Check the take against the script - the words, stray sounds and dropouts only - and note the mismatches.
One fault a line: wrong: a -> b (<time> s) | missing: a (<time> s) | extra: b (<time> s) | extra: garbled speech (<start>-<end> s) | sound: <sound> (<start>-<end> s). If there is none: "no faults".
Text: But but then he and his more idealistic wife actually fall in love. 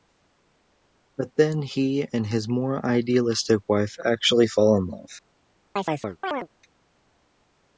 missing: but (1.3 s)
sound: chirp (5.8-6.5 s)